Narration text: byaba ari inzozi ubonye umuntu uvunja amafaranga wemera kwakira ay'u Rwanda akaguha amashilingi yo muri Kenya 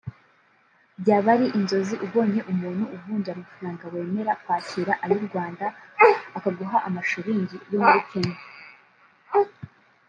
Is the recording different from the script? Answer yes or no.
no